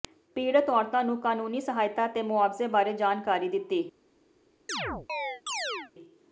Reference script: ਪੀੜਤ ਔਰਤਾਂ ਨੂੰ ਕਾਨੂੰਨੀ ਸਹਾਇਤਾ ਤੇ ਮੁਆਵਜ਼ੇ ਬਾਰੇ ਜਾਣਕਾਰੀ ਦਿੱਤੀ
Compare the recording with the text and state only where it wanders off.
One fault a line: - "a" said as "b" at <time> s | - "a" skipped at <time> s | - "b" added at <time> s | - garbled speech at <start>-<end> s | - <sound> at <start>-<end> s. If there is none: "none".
- chirp at 4.7-5.9 s